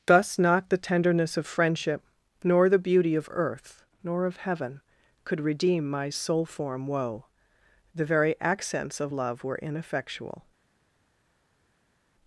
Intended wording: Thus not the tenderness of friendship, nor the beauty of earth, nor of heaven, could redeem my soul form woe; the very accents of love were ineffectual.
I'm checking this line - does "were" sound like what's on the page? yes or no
yes